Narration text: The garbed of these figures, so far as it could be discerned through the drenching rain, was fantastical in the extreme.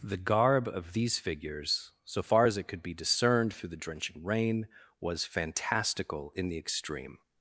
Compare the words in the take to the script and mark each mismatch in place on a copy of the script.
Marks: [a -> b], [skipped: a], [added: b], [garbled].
The [garbed -> garb] of these figures, so far as it could be discerned through the drenching rain, was fantastical in the extreme.